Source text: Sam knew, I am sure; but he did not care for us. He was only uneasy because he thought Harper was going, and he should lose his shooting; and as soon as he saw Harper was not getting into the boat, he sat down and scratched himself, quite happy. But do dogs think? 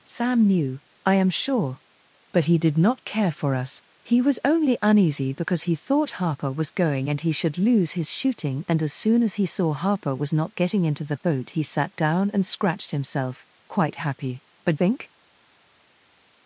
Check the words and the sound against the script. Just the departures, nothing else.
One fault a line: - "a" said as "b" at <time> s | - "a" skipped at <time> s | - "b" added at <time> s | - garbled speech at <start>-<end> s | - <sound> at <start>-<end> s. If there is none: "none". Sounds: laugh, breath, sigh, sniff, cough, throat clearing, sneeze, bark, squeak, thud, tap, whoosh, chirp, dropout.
- "do dogs" skipped at 14.8 s